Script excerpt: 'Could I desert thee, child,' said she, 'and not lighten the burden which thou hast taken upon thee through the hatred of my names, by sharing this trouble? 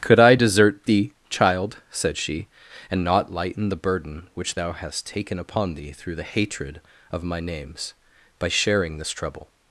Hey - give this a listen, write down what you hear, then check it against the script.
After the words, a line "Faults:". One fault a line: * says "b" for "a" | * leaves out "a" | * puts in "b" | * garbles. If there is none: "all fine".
'Could I desert thee, child,' said she, 'and not lighten the burden which thou hast taken upon thee through the hatred of my names, by sharing this trouble?
Faults:
all fine